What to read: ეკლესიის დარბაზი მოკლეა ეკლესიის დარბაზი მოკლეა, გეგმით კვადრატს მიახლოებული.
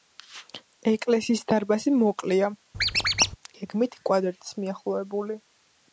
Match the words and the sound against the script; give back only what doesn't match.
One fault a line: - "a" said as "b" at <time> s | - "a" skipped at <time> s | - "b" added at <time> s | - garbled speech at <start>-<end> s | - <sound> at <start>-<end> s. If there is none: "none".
- "ეკლესიის დარბაზი მოკლეა" skipped at 2.5 s
- squeak at 2.7-3.4 s